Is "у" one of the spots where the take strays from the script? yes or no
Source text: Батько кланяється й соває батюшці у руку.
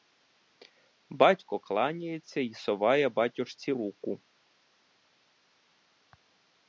yes